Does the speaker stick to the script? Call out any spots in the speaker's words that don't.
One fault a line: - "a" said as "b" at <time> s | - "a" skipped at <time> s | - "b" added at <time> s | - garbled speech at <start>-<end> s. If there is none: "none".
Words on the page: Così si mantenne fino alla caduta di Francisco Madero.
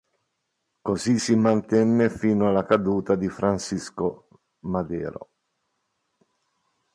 none